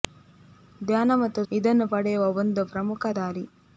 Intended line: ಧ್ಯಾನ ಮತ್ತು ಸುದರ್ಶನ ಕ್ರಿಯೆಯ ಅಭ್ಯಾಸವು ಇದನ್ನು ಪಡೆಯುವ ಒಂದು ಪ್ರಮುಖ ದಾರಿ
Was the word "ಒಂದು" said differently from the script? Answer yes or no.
no